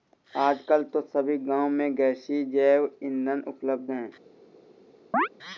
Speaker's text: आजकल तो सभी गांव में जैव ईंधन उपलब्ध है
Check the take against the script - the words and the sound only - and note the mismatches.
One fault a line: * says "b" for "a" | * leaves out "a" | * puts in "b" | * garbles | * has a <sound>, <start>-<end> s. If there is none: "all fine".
* puts in "गैसीय"
* has a chirp, 5.1-5.3 s